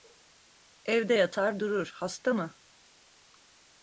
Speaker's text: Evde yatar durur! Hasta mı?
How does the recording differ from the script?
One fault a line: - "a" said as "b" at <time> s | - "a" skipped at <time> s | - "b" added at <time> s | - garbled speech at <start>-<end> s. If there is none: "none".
none